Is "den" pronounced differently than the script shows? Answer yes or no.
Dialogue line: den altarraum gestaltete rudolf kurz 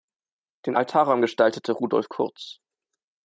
no